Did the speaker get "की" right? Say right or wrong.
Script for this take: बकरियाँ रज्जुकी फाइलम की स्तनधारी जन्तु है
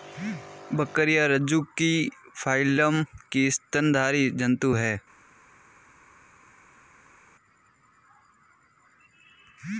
right